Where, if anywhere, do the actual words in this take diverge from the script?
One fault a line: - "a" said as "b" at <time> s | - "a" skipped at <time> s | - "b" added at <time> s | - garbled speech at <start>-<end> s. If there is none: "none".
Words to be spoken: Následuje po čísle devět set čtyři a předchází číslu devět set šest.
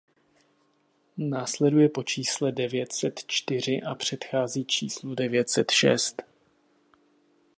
none